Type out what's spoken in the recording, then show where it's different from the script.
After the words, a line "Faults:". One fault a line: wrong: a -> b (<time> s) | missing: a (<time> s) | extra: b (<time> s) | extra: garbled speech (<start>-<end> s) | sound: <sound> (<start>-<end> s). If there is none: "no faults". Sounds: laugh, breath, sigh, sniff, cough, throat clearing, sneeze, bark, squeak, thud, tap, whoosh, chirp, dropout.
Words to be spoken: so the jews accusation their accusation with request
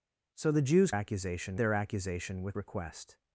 so the jews accusation their accusation with request
Faults:
no faults